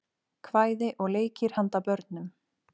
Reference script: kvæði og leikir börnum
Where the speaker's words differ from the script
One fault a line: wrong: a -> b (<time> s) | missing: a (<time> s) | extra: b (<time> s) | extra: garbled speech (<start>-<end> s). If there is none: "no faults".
extra: handa (1.6 s)